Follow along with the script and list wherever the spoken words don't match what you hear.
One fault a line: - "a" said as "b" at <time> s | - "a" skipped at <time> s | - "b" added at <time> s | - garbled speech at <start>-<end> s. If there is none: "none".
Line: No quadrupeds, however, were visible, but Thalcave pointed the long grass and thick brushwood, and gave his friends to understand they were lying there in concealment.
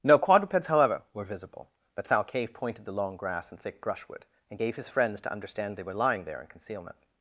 none